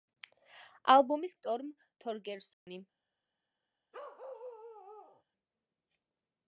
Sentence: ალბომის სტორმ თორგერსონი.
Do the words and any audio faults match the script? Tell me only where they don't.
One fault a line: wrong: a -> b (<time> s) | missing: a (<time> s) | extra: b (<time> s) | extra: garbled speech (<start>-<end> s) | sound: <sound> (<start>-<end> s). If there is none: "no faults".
sound: dropout (2.5-2.7 s)
sound: bark (3.9-5.2 s)